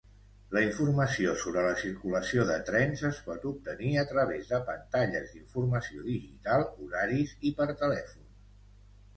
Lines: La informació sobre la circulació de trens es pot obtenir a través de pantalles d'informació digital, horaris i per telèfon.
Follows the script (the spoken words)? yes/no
yes